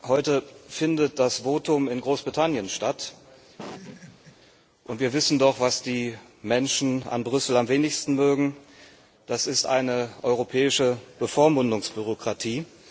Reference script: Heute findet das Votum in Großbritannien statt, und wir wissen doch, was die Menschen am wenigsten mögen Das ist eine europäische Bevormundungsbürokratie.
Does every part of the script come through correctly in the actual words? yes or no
no